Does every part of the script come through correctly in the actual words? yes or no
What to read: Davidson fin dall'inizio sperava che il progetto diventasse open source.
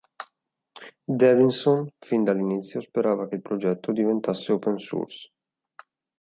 yes